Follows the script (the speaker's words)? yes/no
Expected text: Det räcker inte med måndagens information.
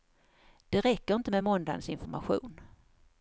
yes